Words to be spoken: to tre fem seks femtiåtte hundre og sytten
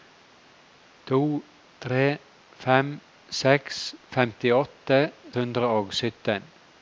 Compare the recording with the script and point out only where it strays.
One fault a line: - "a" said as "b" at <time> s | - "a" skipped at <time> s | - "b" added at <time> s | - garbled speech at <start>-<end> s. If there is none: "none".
none